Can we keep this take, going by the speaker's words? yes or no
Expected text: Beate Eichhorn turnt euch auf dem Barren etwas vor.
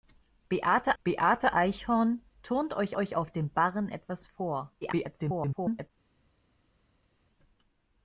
no